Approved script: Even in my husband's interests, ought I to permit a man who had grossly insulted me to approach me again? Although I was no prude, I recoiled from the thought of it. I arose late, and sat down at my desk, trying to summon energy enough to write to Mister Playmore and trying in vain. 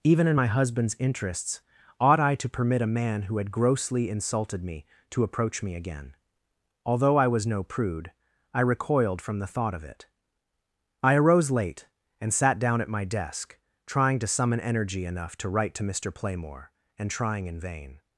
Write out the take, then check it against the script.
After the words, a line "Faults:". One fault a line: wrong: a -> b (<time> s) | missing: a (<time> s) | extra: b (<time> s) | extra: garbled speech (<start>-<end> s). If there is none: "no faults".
Even in my husband's interests, ought I to permit a man who had grossly insulted me to approach me again? Although I was no prude, I recoiled from the thought of it. I arose late, and sat down at my desk, trying to summon energy enough to write to Mister Playmore and trying in vain.
Faults:
no faults